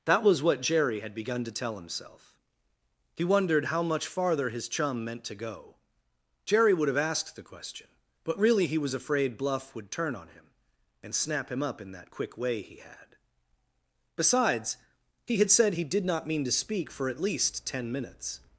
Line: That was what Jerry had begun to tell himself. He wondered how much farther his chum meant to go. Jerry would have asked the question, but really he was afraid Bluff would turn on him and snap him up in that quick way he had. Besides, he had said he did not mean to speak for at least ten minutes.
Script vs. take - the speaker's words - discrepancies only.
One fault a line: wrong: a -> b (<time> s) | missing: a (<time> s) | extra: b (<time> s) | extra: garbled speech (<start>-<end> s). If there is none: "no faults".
no faults